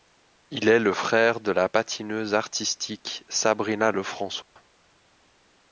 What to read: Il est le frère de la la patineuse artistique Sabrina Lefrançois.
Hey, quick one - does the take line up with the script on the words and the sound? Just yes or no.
no